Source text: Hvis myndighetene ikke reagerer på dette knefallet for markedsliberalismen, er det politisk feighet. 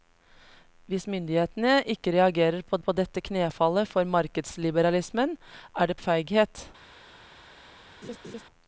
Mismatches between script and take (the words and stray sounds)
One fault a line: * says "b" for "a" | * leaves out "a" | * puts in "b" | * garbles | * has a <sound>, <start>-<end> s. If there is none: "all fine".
* puts in "på"
* leaves out "politisk"
* has a laugh, 8.0-8.4 s